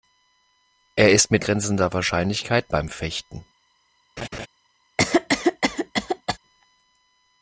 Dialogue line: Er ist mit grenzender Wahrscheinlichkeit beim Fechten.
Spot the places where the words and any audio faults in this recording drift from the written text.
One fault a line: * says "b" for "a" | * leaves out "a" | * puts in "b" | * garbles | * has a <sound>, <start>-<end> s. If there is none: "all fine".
* has a laugh, 4.2-4.5 s
* has a cough, 5.0-6.4 s